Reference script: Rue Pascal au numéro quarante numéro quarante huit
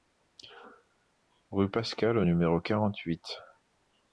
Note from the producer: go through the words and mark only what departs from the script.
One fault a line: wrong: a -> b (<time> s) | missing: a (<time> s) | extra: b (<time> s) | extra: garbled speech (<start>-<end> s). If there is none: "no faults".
missing: numéro quarante (3.0 s)